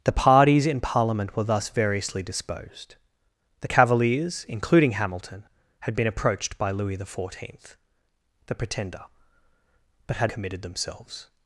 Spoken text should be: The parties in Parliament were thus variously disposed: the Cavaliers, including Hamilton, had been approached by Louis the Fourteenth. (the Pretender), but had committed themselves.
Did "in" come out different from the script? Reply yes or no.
no